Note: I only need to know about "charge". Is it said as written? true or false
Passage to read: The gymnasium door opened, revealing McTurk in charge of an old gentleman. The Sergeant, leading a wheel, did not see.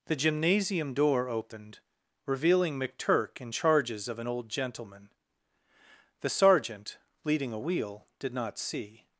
false